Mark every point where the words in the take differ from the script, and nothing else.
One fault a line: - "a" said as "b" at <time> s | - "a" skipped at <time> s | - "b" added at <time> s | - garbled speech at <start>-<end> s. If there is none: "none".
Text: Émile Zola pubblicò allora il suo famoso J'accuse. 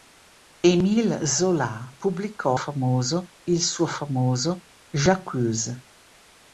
- "allora" said as "famoso" at 2.5 s